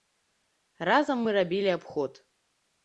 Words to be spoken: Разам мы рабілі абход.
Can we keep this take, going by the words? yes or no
yes